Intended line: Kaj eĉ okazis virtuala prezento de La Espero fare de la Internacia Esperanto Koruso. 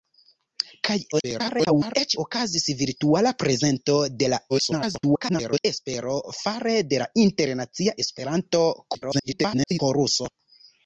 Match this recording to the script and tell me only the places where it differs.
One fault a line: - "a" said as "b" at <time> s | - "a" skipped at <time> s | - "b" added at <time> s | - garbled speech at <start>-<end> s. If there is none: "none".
- garbled speech at 1.1-2.0 s
- garbled speech at 4.5-5.6 s
- garbled speech at 8.9-9.8 s